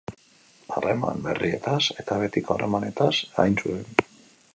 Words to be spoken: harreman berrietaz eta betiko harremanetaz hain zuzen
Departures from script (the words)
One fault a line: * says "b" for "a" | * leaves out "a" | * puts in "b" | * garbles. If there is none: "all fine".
all fine